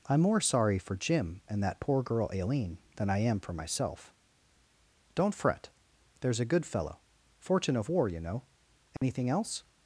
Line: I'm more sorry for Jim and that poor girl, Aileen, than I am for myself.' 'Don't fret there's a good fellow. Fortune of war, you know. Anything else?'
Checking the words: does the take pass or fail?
pass